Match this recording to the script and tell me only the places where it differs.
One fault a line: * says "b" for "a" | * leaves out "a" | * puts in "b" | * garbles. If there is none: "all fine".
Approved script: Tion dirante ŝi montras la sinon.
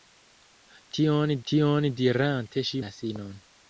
* puts in "tion"
* leaves out "montras"